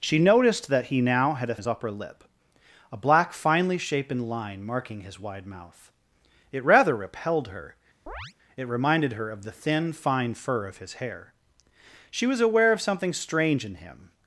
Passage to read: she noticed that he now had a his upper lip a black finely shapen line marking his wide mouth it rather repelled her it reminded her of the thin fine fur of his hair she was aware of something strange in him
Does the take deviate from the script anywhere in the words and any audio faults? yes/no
yes